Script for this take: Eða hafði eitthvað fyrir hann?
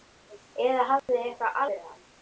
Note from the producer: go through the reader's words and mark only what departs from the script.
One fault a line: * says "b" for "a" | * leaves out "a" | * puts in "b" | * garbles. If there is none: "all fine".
all fine